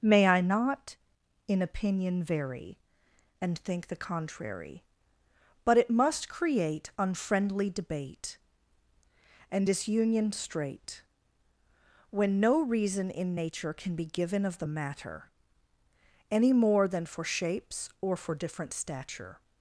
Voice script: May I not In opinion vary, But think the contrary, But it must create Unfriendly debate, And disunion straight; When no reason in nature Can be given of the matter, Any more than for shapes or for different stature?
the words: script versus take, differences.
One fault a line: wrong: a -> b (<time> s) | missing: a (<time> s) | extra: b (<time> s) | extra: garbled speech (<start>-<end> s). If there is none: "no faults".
wrong: But -> And (3.4 s)